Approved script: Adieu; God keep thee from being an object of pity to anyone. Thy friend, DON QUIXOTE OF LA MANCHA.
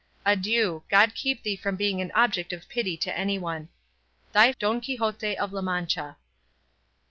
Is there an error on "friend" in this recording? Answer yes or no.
yes